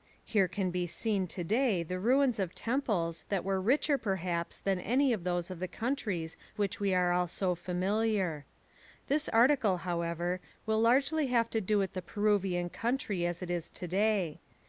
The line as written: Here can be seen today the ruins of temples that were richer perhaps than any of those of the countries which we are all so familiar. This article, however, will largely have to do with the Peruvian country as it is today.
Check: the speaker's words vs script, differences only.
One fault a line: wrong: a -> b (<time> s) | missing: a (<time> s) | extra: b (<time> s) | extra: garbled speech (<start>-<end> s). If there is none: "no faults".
no faults